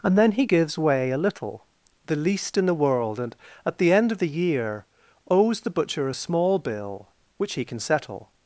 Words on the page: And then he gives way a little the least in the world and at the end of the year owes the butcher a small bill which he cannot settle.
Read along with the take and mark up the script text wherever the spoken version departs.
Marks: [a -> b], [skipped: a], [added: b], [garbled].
And then he gives way a little the least in the world and at the end of the year owes the butcher a small bill which he [cannot -> can] settle.